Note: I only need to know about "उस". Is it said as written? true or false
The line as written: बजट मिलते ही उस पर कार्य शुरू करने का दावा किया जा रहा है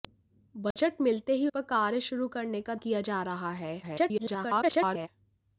false